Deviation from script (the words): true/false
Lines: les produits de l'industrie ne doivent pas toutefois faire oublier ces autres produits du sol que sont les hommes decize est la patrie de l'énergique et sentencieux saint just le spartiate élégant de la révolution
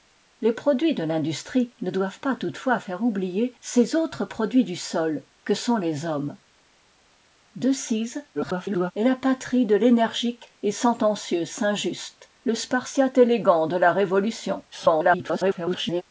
true